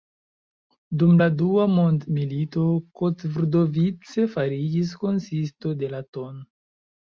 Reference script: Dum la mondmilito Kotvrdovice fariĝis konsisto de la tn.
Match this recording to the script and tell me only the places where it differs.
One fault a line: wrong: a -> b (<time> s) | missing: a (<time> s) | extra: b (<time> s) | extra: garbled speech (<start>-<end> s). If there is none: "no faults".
extra: dua (1.4 s)